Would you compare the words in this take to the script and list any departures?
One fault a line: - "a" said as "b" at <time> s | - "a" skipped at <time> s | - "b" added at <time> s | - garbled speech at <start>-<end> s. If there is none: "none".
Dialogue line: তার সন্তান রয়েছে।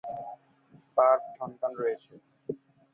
none